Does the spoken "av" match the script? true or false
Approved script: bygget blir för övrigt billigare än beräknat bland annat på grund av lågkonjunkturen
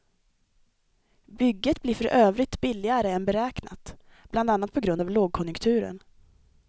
true